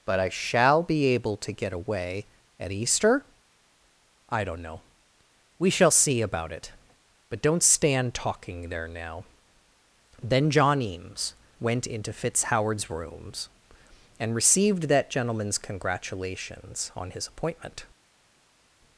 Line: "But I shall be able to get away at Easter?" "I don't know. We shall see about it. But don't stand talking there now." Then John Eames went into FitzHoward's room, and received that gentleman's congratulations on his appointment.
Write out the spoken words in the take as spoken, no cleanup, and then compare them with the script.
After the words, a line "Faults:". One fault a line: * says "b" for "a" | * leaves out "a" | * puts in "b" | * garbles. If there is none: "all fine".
"But I shall be able to get away at Easter?" "I don't know. We shall see about it. But don't stand talking there now." Then John Eames went into FitzHoward's rooms, and received that gentleman's congratulations on his appointment.
Faults:
* says "rooms" for "room"